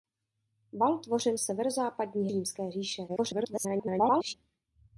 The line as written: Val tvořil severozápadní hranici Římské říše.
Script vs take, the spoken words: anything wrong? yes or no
yes